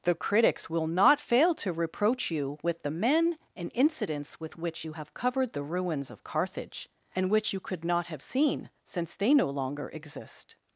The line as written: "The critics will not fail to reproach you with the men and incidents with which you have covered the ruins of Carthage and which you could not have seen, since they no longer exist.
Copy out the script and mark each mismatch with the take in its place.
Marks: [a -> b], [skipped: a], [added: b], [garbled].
"The critics will not fail to reproach you with the men and incidents with which you have covered the ruins of Carthage and which you could not have seen, since they no longer exist.